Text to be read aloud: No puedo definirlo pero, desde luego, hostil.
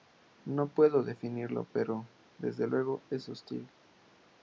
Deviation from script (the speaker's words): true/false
true